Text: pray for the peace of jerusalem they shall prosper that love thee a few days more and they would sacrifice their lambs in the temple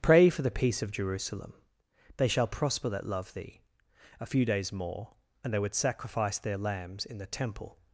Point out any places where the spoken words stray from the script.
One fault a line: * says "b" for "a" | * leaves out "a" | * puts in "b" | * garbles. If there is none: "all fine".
all fine